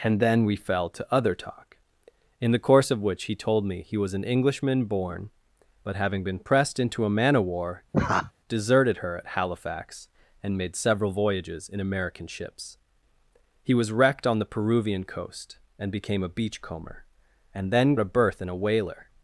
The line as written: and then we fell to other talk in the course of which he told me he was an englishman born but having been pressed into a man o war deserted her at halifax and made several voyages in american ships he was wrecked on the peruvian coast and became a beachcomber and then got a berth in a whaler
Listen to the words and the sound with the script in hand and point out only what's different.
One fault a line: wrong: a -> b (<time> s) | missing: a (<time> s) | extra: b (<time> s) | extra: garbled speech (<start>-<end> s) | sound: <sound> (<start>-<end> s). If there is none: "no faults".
sound: laugh (7.9-8.3 s)
missing: got (17.9 s)